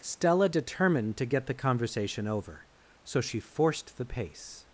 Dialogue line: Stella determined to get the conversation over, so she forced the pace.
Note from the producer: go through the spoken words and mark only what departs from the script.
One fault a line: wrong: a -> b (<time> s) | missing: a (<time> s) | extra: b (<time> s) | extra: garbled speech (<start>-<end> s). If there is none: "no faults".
no faults